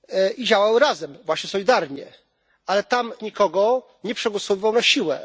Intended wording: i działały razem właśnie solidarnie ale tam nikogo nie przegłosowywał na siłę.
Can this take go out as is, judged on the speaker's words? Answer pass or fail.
pass